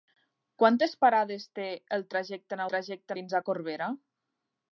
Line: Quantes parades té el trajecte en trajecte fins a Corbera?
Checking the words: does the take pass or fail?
pass